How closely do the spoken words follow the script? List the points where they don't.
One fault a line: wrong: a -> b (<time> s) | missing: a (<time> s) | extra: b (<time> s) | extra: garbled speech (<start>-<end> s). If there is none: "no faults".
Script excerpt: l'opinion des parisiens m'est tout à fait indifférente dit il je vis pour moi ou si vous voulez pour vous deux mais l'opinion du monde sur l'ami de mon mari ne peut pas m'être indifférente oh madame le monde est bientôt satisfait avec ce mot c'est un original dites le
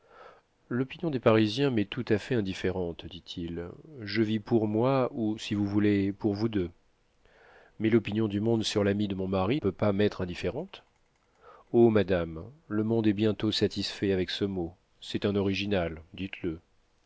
missing: ne (9.6 s)